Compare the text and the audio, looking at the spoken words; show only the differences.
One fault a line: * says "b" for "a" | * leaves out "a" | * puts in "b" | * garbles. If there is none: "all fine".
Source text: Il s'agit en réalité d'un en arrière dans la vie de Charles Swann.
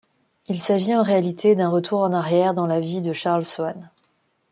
* puts in "retour"